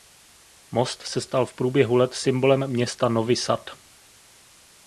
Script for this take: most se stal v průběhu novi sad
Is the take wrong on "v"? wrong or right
right